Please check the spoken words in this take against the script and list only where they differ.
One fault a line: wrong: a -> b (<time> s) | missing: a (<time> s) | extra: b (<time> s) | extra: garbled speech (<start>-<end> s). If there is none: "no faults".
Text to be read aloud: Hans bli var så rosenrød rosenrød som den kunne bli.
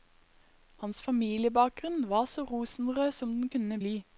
wrong: bli -> familiebakgrunn (1.0 s)
missing: rosenrød (3.1 s)